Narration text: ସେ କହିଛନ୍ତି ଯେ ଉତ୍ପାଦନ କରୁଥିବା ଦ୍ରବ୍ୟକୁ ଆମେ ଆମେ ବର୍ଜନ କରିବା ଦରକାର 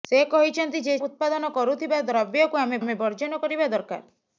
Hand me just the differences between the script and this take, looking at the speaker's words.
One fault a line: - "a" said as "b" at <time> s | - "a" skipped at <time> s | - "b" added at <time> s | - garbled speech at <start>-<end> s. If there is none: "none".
none